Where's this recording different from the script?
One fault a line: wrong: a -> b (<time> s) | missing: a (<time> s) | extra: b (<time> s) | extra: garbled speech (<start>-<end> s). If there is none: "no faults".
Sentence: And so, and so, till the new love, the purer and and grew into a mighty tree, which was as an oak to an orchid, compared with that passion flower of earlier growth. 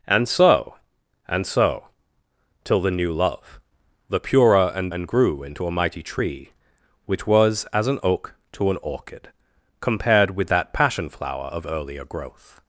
no faults